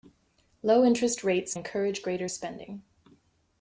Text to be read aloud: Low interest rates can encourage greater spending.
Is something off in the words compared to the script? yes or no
yes